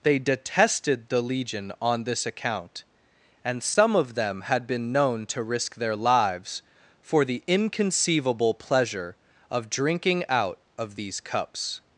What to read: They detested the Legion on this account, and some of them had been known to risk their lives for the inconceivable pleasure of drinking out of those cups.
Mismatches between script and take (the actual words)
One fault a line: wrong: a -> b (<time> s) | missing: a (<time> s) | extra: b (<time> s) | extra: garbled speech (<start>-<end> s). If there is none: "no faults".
wrong: those -> these (10.9 s)